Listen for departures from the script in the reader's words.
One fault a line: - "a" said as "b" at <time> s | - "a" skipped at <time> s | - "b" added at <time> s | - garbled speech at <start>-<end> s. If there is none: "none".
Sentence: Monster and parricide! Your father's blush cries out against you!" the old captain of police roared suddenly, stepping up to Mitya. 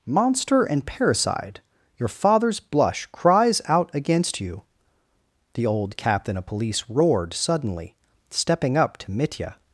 none